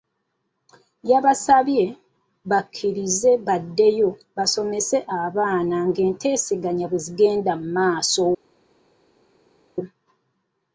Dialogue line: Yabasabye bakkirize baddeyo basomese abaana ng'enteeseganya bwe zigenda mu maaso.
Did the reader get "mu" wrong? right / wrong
right